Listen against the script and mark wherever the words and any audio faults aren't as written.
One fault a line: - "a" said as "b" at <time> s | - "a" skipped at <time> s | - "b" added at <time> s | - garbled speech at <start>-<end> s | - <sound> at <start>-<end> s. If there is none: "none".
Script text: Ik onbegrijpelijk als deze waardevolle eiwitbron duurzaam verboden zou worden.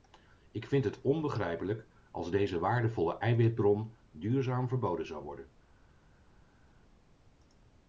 - "vind het" added at 0.7 s